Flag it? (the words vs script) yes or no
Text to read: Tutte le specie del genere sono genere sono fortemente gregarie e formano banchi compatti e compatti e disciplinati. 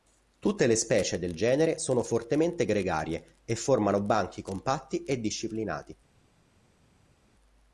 yes